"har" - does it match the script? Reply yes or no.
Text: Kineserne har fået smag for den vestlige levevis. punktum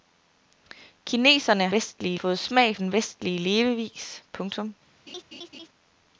no